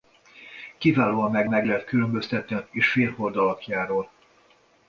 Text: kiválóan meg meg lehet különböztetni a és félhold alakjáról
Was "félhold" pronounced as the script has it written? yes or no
yes